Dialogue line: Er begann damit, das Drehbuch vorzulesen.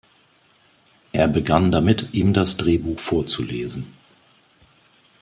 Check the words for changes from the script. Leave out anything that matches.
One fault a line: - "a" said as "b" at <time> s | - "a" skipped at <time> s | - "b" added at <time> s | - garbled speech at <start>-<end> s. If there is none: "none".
- "ihm" added at 2.1 s